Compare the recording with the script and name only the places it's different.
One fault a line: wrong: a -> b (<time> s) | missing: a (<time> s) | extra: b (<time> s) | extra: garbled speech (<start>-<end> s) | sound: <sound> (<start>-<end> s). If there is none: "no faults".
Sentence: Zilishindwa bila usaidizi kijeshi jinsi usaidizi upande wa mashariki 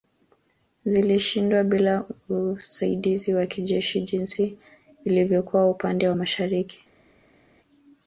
extra: wa (3.3 s)
wrong: usaidizi -> ilivyokuwa (5.0 s)